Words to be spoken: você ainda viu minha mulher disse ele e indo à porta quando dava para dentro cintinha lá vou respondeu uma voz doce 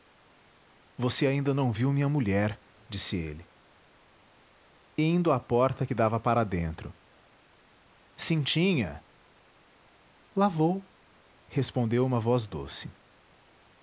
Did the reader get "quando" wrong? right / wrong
wrong